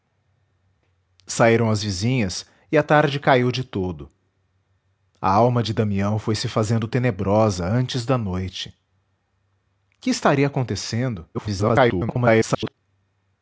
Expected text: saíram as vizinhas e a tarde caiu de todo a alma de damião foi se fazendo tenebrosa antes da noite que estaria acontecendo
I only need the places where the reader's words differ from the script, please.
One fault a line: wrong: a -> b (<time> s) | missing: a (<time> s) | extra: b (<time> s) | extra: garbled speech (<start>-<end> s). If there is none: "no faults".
extra: garbled speech (11.3-12.7 s)